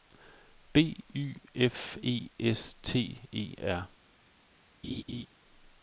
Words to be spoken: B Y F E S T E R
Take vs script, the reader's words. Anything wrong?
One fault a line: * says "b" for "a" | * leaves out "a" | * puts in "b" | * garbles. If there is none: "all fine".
all fine